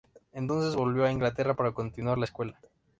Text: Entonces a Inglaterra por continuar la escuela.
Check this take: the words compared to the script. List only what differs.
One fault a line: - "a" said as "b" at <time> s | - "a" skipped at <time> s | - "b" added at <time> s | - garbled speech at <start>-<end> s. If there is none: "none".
- "volvió" added at 0.8 s
- "por" said as "para" at 1.6 s